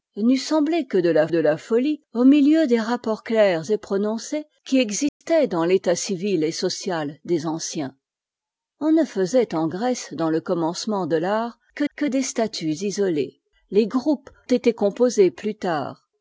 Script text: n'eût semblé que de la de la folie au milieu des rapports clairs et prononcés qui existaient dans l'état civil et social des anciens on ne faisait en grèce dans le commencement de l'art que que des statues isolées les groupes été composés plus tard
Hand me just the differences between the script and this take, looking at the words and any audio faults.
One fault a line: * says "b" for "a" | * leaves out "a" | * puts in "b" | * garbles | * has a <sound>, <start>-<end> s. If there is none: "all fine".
* has a dropout, 5.1-5.2 s